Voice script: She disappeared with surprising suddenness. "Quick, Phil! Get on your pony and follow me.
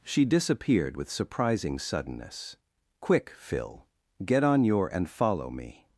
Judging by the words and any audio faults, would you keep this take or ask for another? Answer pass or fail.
fail